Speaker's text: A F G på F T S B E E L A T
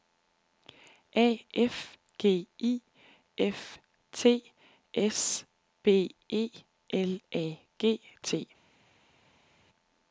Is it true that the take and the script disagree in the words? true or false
true